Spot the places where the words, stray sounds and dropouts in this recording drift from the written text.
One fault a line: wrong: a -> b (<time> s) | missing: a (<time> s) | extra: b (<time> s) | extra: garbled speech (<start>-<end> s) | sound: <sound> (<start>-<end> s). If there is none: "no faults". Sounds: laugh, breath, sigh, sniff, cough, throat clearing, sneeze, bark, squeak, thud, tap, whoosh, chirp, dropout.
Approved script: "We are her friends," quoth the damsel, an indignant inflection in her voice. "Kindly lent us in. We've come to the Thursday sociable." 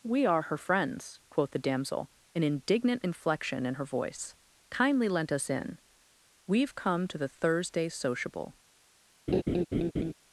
sound: laugh (9.3-10.1 s)